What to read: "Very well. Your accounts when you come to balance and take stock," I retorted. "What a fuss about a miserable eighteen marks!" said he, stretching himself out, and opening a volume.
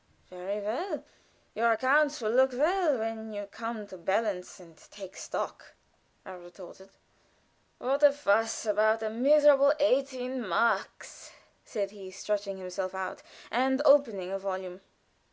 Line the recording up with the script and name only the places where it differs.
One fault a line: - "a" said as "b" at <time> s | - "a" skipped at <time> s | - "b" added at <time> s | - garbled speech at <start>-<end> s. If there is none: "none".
- "will look well" added at 2.2 s